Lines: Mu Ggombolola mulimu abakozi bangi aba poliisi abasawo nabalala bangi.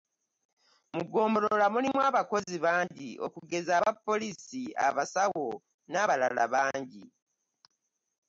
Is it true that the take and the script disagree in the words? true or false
true